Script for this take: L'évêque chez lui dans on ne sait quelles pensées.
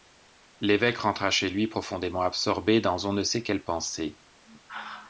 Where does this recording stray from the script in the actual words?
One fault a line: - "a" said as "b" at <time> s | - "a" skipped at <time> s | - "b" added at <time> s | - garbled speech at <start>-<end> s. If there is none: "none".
- "rentra" added at 1.0 s
- "profondément absorbé" added at 1.7 s